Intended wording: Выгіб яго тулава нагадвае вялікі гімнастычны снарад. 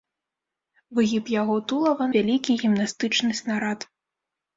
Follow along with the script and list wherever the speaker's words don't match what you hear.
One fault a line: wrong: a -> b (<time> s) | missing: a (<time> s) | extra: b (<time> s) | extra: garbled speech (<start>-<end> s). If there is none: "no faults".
missing: нагадвае (2.1 s)